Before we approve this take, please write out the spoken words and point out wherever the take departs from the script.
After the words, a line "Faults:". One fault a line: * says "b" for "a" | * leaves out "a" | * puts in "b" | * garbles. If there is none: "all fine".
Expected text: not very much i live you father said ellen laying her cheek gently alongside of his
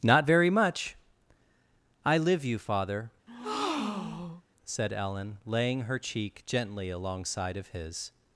not very much i live you father said ellen laying her cheek gently alongside of his
Faults:
all fine